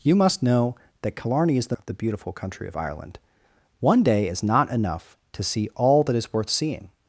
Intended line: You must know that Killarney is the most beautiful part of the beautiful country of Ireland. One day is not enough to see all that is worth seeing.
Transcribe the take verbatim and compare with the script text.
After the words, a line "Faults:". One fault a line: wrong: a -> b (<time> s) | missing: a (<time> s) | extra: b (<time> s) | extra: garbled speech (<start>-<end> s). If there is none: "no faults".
You must know that Killarney is the of the beautiful country of Ireland. One day is not enough to see all that is worth seeing.
Faults:
missing: most beautiful part (1.8 s)